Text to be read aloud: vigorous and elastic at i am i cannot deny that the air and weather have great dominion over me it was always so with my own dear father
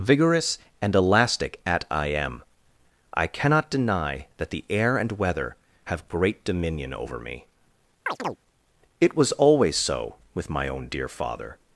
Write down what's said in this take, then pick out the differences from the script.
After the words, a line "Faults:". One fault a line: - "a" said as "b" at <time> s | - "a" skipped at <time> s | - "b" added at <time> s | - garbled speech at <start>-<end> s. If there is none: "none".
vigorous and elastic at i am i cannot deny that the air and weather have great dominion over me it was always so with my own dear father
Faults:
none